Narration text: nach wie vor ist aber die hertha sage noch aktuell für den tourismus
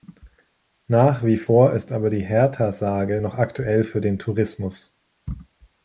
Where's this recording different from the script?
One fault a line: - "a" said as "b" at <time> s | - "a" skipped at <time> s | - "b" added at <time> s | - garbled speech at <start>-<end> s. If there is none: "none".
none